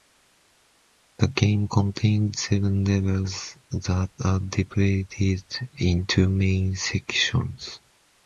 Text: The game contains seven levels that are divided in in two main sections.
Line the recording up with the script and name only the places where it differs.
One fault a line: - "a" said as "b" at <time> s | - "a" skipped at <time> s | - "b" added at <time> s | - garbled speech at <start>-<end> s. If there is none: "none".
- "in" skipped at 6.1 s